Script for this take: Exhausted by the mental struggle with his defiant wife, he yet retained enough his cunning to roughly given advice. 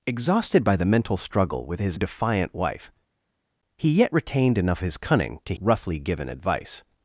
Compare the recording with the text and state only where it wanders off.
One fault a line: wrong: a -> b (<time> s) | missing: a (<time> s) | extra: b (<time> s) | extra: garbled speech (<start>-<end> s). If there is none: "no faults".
no faults